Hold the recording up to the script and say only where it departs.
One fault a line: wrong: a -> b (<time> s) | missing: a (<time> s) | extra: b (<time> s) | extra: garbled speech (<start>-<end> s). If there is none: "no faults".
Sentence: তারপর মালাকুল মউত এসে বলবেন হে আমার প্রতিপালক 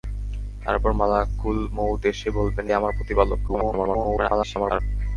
missing: হে (2.6 s)
extra: garbled speech (3.5-4.8 s)